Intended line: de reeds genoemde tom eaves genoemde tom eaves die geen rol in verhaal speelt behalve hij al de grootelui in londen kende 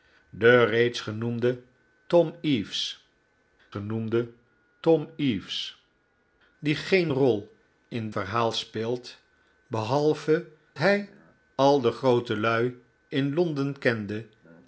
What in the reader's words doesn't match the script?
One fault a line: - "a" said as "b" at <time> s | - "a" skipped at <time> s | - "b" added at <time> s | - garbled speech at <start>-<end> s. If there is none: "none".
none